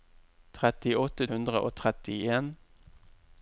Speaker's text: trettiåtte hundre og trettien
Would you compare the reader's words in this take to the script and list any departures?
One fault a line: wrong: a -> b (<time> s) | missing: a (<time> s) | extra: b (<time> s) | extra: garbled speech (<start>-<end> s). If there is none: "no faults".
no faults